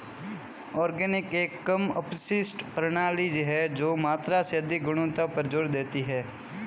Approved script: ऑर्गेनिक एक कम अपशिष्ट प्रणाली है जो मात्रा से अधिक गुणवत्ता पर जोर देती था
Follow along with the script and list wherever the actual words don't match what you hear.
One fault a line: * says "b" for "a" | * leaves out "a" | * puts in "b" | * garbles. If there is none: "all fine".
* says "है" for "था"